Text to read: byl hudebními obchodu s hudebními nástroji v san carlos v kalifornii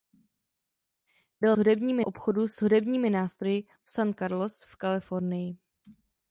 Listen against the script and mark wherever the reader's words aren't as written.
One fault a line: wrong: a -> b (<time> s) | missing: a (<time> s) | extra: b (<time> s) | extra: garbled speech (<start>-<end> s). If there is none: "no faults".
no faults